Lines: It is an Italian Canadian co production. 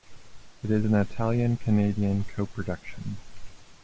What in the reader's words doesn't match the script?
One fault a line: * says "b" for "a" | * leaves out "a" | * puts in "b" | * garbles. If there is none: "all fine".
all fine